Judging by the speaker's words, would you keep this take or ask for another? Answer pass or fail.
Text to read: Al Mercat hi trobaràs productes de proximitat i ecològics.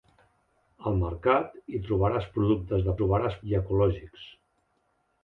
fail